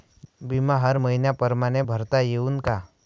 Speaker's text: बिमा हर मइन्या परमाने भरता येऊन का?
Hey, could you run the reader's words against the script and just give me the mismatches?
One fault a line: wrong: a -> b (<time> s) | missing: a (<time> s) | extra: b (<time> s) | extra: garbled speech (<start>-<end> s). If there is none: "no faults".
no faults